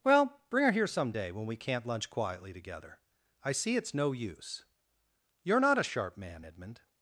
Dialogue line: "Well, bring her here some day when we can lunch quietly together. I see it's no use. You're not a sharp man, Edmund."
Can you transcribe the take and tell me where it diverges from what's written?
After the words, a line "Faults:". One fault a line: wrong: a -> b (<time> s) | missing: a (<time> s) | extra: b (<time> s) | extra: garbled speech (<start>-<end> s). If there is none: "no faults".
"Well, bring her here some day when we can't lunch quietly together. I see it's no use. You're not a sharp man, Edmund."
Faults:
wrong: can -> can't (1.6 s)